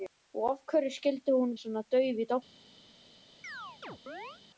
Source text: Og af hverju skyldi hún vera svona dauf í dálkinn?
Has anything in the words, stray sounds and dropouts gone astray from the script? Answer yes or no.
yes